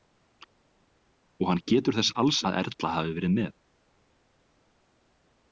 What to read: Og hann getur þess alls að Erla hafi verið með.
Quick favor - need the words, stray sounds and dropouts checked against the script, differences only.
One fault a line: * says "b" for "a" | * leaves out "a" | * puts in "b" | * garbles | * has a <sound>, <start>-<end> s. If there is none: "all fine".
all fine